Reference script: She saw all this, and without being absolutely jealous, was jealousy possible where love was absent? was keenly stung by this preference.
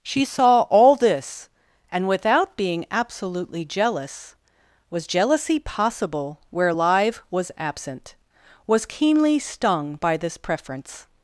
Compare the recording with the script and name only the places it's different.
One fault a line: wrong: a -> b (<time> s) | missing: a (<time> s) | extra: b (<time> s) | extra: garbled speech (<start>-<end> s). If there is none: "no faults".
wrong: love -> live (6.7 s)